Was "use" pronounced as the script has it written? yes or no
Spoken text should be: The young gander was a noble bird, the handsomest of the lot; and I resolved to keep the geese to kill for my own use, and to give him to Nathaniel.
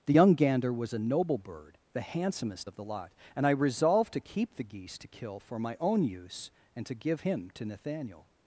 yes